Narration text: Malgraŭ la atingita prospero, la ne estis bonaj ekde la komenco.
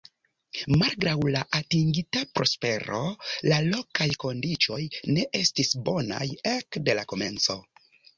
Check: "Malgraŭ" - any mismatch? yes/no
no